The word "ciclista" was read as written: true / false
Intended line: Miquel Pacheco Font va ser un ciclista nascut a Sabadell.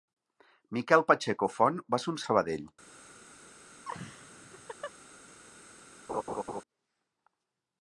false